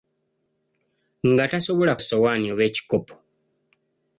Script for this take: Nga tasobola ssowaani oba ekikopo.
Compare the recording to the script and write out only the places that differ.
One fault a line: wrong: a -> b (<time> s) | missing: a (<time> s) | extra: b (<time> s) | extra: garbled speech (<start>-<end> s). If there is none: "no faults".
no faults